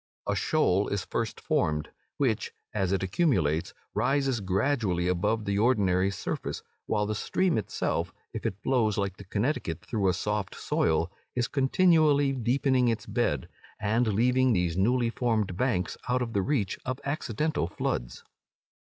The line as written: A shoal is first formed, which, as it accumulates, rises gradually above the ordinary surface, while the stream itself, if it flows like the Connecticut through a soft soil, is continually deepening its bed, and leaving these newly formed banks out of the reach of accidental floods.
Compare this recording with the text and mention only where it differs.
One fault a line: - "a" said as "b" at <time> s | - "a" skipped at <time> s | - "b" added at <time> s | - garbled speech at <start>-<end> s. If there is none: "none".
none